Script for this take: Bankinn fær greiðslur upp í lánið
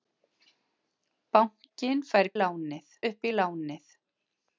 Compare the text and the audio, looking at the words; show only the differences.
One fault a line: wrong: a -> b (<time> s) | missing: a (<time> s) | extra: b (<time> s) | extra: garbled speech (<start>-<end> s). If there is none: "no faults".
wrong: greiðslur -> lánið (2.4 s)